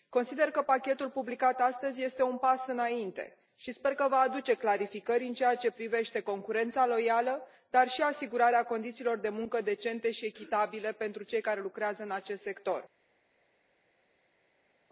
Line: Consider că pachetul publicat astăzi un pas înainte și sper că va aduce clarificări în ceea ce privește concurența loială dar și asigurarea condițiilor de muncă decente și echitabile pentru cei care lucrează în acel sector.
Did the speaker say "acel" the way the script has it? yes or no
no